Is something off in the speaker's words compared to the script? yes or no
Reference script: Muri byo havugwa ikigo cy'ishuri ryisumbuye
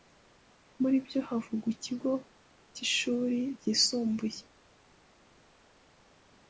no